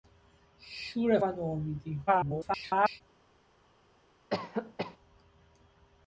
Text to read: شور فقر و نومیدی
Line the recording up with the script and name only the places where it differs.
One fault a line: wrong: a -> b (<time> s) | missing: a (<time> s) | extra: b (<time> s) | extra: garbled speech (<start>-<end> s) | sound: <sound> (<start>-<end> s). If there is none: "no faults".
missing: فقر (1.2 s)
extra: garbled speech (2.1-3.0 s)
sound: cough (4.3-5.0 s)